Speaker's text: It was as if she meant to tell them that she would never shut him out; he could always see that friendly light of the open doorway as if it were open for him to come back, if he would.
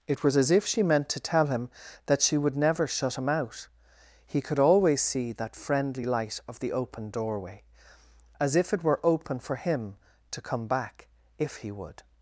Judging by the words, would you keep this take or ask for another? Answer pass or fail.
fail